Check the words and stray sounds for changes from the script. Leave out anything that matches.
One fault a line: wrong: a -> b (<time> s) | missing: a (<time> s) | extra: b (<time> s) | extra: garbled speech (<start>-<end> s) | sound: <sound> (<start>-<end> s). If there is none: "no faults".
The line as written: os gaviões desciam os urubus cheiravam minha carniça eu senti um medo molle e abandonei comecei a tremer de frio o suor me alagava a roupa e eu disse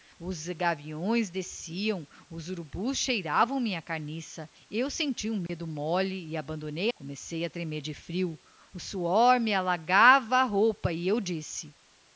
sound: dropout (5.5-5.5 s)